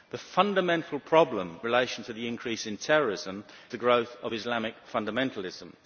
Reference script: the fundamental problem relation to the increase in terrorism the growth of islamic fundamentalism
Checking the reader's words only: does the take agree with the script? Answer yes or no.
yes